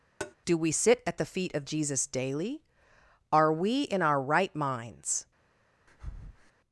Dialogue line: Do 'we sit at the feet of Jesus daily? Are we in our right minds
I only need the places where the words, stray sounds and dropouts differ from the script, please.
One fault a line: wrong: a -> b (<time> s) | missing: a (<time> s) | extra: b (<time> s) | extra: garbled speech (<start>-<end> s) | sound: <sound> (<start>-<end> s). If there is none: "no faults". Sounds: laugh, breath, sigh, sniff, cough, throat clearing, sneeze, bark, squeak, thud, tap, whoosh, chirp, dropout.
sound: tap (0.2-0.3 s)
sound: breath (5.9-6.5 s)